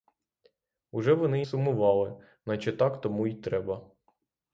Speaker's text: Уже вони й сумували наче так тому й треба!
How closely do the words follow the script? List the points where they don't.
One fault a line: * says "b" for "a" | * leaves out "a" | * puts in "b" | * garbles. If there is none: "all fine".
all fine